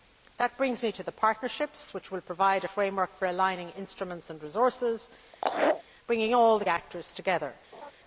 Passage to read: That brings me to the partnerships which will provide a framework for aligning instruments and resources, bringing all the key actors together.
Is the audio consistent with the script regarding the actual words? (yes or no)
no